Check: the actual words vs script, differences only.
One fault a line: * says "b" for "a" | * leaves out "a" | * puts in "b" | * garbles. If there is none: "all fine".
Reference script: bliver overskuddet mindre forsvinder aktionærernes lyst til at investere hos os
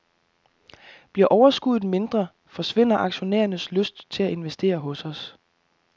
all fine